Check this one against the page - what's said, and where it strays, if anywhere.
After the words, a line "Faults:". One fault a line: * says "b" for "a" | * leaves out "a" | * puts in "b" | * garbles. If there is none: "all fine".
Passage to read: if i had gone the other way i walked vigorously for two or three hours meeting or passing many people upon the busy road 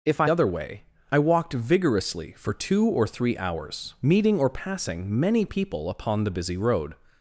if i other way i walked vigorously for two or three hours meeting or passing many people upon the busy road
Faults:
* leaves out "had gone the"